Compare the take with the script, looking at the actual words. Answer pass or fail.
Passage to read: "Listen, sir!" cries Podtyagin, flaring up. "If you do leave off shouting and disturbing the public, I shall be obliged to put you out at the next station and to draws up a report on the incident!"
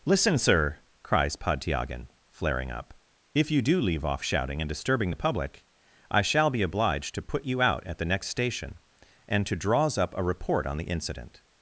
pass